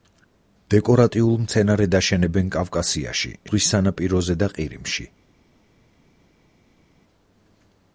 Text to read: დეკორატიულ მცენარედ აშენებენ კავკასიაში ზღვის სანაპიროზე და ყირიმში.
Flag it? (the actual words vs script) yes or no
no